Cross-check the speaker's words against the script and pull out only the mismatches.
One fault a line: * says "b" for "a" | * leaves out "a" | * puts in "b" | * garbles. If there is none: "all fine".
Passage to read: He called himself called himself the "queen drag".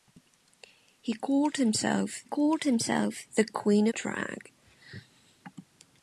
all fine